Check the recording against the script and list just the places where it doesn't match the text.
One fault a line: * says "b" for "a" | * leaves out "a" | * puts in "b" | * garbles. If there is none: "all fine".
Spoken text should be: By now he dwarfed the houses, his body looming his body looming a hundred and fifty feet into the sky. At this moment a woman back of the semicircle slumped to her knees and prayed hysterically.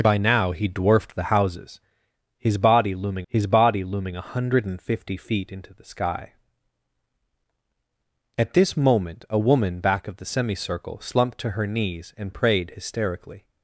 all fine